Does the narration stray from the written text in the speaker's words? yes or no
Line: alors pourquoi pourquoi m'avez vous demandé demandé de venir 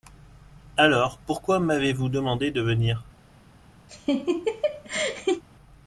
yes